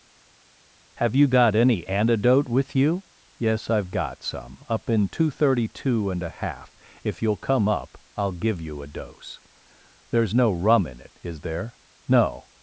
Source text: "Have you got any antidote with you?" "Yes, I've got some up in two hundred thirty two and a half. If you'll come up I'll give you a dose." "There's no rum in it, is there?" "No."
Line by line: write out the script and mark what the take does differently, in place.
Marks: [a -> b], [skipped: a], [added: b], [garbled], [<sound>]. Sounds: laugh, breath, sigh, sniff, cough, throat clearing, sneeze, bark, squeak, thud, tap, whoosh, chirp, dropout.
"Have you got any antidote with you?" "Yes, I've got some up in two hundred thirty two and a half. If you'll come up I'll give you a dose." "There's no rum in it, is there?" "No."